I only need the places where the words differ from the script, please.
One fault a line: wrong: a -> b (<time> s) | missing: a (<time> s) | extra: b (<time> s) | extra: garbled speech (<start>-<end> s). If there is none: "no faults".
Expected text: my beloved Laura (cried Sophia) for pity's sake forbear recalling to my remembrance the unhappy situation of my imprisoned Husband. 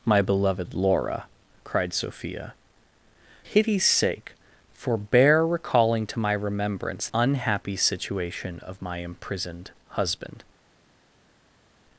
missing: for (2.5 s)
missing: the (7.1 s)